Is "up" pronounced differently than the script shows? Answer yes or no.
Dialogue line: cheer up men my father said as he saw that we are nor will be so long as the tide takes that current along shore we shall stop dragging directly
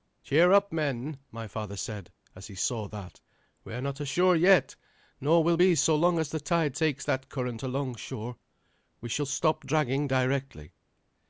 no